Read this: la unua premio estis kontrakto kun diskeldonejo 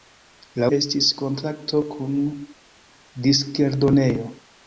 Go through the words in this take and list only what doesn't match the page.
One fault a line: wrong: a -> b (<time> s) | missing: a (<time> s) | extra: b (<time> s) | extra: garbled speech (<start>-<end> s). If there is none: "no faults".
missing: unua premio (0.7 s)